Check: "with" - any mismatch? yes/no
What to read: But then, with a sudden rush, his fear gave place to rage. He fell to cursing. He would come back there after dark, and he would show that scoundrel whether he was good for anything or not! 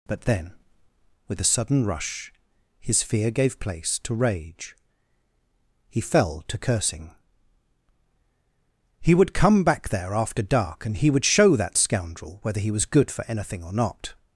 no